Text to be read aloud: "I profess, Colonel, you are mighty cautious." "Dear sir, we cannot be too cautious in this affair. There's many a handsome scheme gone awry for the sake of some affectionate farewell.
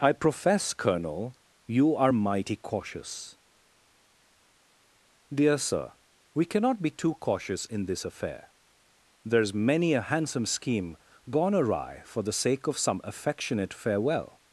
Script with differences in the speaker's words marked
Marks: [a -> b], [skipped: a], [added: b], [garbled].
"I profess, Colonel, you are mighty cautious." "Dear sir, we cannot be too cautious in this affair. There's many a handsome scheme gone awry for the sake of some affectionate farewell.